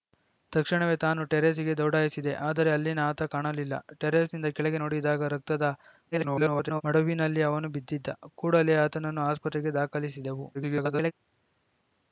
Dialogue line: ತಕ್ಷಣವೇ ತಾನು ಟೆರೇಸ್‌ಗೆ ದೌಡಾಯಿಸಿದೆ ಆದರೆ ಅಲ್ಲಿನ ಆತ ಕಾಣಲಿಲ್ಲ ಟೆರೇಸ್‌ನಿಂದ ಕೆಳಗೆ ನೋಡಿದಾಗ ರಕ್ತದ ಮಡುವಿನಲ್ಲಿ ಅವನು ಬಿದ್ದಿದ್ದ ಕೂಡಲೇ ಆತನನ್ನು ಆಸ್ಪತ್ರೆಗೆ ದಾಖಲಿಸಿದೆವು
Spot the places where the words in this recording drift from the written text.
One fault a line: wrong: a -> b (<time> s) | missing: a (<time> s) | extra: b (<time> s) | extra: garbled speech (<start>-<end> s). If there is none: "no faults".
extra: garbled speech (6.1-6.8 s)
extra: garbled speech (10.5-11.1 s)